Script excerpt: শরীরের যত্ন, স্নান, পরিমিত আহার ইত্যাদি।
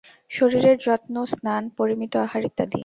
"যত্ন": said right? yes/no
yes